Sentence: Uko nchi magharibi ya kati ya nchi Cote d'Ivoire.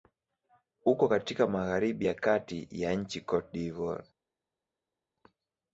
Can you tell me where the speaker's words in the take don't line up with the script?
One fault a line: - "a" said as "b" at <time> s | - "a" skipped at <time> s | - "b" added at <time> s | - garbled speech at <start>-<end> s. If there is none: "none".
- "nchi" said as "katika" at 1.1 s